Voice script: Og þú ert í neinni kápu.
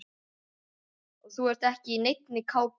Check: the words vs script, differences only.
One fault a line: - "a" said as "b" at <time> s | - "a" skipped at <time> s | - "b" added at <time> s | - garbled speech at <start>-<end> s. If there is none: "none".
- "ekki" added at 1.7 s